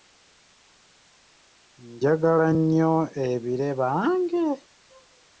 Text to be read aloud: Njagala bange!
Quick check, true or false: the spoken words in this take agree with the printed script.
false